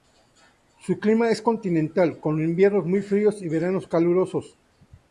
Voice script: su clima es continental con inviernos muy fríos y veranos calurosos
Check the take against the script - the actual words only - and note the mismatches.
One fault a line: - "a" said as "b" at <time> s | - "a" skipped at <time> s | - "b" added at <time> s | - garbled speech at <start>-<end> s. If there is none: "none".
none